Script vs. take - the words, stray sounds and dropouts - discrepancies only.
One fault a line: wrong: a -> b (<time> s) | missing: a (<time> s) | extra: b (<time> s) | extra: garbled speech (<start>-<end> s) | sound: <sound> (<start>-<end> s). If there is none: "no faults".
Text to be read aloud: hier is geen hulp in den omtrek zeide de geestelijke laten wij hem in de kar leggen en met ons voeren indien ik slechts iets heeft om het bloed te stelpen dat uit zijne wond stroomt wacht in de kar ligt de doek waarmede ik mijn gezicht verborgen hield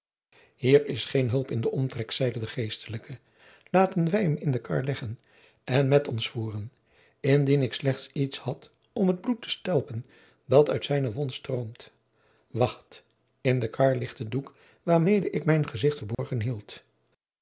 wrong: heeft -> had (8.4 s)
sound: dropout (16.1-16.2 s)